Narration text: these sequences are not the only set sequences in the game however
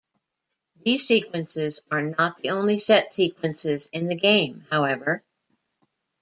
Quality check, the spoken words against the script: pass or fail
pass